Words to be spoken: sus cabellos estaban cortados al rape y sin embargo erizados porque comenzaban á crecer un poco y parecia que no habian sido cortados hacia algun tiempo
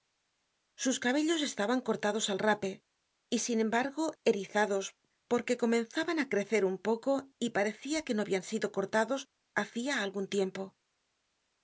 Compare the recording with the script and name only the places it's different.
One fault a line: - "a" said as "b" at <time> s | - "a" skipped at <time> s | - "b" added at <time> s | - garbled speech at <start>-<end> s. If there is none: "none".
none